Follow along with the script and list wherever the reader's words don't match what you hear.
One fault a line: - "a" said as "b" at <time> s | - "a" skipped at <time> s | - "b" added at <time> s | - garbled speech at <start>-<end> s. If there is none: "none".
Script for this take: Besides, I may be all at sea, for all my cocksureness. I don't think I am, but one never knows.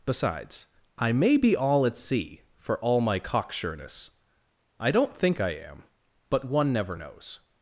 none